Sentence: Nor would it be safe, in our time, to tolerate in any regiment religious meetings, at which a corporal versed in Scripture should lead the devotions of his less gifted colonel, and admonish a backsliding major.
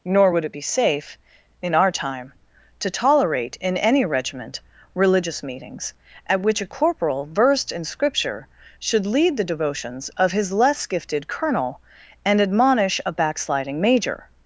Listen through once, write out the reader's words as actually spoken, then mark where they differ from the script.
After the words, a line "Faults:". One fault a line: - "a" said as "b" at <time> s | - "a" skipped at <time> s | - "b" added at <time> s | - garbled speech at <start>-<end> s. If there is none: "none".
Nor would it be safe, in our time, to tolerate in any regiment religious meetings, at which a corporal versed in Scripture should lead the devotions of his less gifted colonel, and admonish a backsliding major.
Faults:
none